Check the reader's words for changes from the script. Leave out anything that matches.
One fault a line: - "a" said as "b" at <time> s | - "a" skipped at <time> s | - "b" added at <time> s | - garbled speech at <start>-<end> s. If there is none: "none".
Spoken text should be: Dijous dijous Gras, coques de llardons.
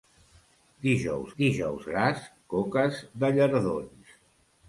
none